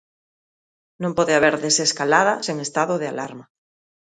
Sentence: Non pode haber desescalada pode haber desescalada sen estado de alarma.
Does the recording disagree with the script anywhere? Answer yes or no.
yes